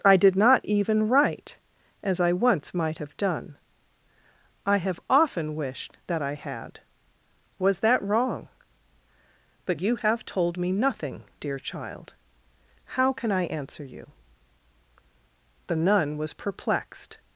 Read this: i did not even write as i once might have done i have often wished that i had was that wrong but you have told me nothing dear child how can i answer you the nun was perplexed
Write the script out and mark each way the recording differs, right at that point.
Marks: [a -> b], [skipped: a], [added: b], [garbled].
i did not even write as i once might have done i have often wished that i had was that wrong but you have told me nothing dear child how can i answer you the nun was perplexed